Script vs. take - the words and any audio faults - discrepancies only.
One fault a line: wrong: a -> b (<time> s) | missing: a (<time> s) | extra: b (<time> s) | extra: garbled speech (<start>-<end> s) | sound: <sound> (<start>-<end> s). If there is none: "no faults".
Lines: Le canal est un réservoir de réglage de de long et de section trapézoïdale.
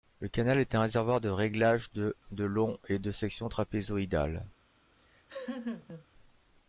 sound: laugh (5.0-6.1 s)